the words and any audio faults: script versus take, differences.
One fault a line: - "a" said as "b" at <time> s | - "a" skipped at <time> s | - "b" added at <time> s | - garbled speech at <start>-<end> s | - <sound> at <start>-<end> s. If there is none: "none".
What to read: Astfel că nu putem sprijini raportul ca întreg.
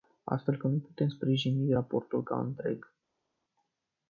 none